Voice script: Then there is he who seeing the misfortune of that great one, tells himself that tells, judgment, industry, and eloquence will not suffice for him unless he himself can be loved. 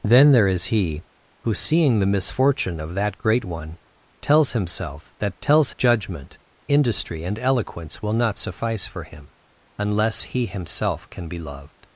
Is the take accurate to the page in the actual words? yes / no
yes